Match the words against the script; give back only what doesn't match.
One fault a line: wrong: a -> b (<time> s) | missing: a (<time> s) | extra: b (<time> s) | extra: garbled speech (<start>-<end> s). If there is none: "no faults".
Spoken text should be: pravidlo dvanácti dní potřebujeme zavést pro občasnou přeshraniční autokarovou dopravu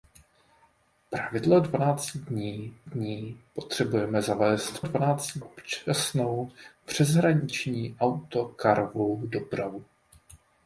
extra: dní (2.8 s)
wrong: pro -> dvanácti (4.8 s)